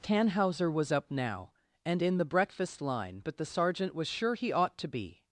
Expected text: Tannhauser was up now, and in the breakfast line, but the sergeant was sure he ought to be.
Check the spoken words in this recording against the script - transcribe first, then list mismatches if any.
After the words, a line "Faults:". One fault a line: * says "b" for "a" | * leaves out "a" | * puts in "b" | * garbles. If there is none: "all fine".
Tannhauser was up now, and in the breakfast line, but the sergeant was sure he ought to be.
Faults:
all fine